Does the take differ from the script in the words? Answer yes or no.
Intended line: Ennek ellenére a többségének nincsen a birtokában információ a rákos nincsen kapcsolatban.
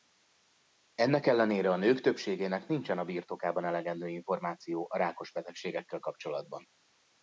yes